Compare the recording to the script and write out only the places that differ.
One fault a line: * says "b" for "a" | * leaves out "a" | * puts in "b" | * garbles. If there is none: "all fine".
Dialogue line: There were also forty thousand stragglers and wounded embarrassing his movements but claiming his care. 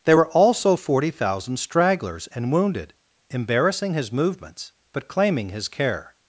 all fine